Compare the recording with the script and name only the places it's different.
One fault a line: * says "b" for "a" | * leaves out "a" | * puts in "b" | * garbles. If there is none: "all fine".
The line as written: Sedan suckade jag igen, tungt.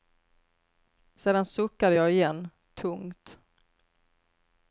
all fine